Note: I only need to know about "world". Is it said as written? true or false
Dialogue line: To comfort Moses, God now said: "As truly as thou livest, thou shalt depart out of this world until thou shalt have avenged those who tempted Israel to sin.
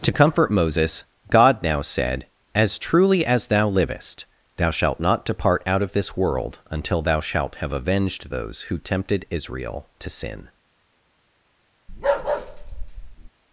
true